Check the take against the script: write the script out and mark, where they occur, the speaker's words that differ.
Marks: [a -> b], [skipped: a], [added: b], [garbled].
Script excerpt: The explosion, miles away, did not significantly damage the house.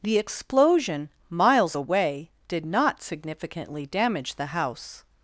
The explosion, miles away, did not significantly damage the house.